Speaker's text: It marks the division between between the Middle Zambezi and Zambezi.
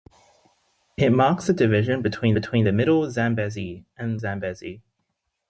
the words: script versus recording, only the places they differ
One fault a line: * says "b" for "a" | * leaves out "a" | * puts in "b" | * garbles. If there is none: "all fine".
all fine